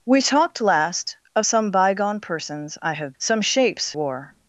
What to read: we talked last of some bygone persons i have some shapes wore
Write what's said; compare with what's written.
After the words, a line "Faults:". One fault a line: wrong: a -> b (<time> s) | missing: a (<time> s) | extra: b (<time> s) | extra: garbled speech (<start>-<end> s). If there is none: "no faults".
we talked last of some bygone persons i have some shapes wore
Faults:
no faults